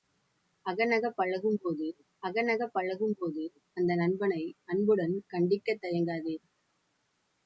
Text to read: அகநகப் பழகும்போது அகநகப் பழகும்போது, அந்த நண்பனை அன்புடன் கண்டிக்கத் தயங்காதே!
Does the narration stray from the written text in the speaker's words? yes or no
no